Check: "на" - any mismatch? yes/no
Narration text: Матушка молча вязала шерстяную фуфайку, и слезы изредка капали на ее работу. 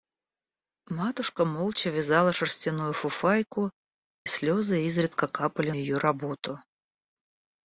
yes